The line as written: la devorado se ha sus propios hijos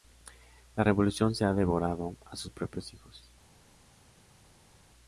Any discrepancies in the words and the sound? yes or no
yes